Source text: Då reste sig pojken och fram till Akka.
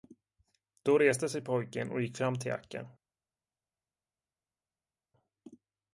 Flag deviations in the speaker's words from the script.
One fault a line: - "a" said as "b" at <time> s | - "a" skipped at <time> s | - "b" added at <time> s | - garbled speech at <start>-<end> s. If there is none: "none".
- "gick" added at 2.0 s